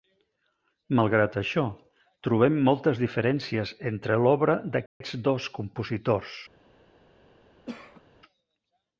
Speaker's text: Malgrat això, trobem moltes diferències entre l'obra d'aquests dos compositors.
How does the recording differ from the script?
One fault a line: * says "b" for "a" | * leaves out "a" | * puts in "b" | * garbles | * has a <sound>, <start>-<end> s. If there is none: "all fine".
* has a dropout, 4.9-5.0 s
* has a cough, 7.7-8.0 s